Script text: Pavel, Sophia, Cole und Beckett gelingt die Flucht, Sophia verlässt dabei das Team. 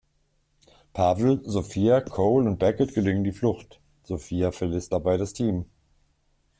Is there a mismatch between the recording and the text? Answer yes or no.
no